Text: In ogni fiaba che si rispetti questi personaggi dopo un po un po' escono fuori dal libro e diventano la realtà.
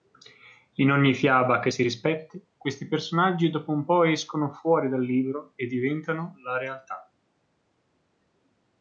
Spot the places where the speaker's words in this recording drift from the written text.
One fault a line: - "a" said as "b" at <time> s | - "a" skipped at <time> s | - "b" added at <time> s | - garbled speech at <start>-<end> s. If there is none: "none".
- "un po" skipped at 4.0 s